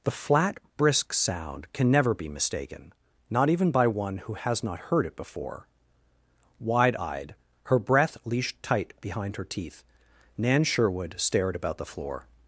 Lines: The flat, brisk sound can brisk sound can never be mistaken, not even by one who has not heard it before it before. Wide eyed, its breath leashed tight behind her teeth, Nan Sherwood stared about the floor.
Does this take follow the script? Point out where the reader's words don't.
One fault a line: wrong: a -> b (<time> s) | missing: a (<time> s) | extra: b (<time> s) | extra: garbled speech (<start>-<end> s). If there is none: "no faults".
missing: brisk sound can (1.9 s)
missing: it before (5.7 s)
wrong: its -> her (7.6 s)